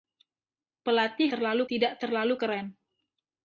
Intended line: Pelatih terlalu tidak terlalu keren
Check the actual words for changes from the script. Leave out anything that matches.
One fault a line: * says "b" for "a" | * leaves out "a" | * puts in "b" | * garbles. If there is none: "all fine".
all fine